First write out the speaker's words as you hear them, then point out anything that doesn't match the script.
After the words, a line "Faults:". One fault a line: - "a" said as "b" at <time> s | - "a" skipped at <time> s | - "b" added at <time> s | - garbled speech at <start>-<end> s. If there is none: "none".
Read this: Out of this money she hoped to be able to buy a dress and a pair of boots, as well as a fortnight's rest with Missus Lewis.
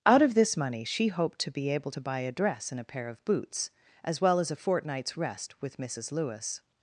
Out of this money she hoped to be able to buy a dress and a pair of boots, as well as a fortnight's rest with Missus Lewis.
Faults:
none